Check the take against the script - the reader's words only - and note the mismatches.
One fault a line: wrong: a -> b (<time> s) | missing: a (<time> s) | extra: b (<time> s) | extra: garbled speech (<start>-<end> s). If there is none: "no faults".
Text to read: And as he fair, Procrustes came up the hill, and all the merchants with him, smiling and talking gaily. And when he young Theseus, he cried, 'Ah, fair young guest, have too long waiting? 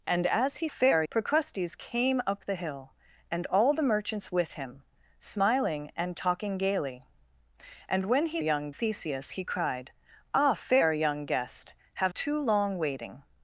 no faults